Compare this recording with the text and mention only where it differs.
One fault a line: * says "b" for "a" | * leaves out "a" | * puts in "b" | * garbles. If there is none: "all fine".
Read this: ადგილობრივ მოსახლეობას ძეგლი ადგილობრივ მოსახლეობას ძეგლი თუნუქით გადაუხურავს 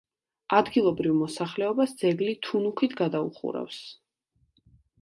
* leaves out "ადგილობრივ მოსახლეობას ძეგლი"